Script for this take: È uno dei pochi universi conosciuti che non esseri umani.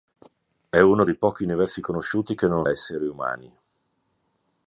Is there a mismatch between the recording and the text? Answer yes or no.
no